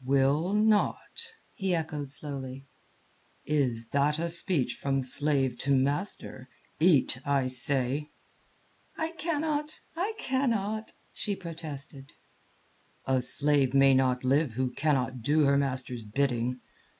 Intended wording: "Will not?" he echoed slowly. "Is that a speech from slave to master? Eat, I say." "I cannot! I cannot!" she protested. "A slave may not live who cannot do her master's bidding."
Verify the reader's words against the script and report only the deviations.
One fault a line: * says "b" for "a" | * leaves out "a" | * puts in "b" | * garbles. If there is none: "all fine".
all fine